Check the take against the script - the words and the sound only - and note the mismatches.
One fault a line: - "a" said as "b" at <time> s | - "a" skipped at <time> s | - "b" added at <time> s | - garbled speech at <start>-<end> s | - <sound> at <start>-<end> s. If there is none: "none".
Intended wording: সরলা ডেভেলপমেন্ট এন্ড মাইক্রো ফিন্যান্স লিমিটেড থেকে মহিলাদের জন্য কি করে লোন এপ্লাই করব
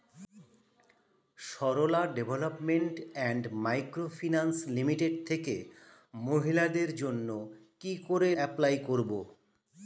- "লোন" skipped at 8.3 s